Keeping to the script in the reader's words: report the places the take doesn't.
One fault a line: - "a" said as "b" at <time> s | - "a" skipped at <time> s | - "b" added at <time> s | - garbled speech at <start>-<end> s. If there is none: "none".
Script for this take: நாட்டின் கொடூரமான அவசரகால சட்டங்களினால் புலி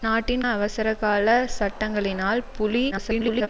- "கொடூரமான" skipped at 0.4 s
- garbled speech at 2.9-3.5 s